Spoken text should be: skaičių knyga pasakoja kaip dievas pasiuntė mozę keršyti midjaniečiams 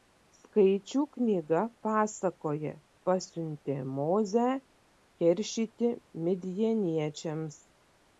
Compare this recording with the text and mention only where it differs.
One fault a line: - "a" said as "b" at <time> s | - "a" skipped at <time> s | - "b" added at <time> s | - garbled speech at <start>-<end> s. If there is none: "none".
- "kaip dievas" skipped at 2.7 s